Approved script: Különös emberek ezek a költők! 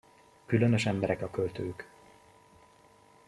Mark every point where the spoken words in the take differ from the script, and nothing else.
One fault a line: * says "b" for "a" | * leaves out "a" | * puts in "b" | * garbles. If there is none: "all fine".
* leaves out "ezek"